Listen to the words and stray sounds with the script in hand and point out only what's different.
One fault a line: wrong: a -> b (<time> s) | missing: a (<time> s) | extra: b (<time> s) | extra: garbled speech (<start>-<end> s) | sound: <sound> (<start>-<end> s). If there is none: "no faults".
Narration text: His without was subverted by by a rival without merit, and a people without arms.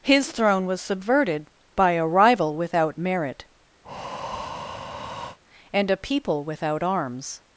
wrong: without -> throne (0.3 s)
missing: by (1.9 s)
sound: breath (3.8-5.4 s)